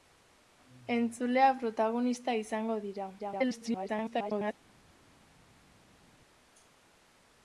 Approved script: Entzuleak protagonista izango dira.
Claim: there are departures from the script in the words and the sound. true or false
true